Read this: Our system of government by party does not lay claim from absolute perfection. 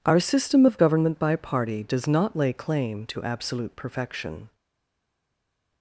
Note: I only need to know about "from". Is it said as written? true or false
false